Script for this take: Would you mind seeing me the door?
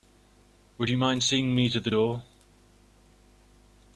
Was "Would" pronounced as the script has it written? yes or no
yes